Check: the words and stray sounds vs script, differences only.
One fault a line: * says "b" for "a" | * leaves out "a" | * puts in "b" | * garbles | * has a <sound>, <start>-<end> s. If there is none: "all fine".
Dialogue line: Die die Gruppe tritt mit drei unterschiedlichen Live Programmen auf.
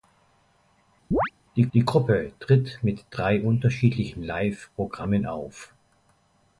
* has a chirp, 1.1-1.3 s